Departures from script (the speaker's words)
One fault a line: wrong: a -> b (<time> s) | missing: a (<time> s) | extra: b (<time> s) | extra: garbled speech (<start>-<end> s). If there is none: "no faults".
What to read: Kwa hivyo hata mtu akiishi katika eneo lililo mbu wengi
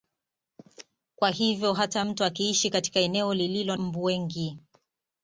no faults